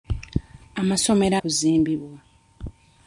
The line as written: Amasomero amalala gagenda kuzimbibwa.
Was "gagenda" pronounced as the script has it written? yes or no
no